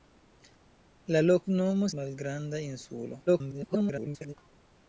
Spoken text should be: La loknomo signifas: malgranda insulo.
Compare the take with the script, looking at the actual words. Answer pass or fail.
fail